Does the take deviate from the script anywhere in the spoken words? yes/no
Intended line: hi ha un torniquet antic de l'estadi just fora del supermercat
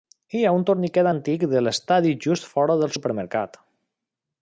no